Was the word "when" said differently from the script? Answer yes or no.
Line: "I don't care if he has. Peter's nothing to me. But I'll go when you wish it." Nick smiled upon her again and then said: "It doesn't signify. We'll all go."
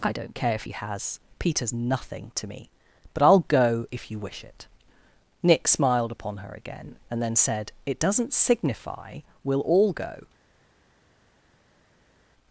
yes